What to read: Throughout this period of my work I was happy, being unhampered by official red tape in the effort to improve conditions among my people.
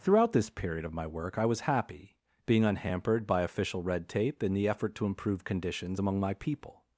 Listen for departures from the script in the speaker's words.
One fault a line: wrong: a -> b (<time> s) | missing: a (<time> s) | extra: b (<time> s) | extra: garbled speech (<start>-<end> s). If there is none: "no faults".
no faults